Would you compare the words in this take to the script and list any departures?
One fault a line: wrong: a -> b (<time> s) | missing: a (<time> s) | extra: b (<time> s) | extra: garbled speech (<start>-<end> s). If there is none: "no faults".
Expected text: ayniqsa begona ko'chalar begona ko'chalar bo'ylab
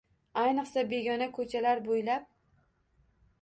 missing: begona ko'chalar (1.8 s)